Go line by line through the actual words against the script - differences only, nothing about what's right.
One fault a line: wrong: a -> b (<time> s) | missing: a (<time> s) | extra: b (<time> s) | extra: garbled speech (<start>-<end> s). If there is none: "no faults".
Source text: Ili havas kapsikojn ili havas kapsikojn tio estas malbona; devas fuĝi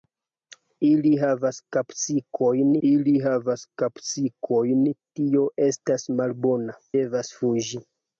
no faults